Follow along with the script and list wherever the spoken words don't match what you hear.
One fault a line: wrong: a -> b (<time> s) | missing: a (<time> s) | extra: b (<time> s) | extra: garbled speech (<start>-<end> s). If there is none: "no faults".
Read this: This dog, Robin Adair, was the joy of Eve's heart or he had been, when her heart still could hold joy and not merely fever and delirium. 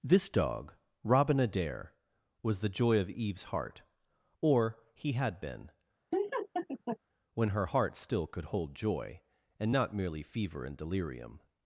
no faults